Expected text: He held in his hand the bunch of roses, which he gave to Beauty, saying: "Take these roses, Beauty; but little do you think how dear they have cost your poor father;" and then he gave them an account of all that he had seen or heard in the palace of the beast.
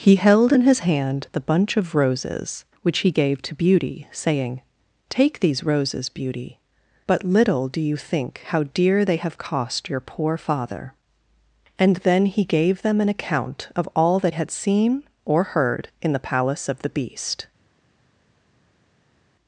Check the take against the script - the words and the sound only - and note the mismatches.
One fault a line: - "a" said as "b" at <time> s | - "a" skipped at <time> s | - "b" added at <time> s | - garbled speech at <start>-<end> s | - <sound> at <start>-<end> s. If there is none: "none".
- "he" skipped at 14.3 s